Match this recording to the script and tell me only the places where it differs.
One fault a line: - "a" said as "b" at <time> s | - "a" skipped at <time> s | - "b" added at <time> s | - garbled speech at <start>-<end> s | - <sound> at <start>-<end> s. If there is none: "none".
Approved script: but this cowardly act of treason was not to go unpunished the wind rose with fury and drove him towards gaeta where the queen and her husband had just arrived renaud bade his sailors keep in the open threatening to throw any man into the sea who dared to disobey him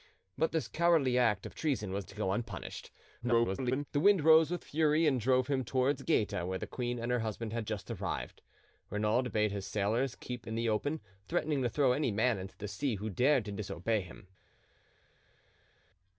- "not" skipped at 2.1 s
- garbled speech at 3.2-3.9 s